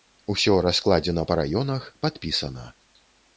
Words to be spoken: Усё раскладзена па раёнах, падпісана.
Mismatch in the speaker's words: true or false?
false